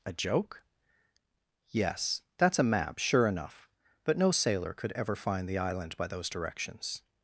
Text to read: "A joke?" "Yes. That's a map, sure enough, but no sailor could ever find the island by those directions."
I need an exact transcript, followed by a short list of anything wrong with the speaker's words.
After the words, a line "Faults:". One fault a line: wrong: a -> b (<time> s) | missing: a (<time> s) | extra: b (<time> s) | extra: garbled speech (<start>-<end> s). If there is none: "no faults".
"A joke?" "Yes. That's a map, sure enough, but no sailor could ever find the island by those directions."
Faults:
no faults